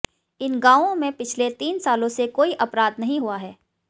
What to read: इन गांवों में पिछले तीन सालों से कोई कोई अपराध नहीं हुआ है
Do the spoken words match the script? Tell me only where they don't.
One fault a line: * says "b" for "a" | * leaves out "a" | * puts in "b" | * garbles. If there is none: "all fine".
* leaves out "कोई"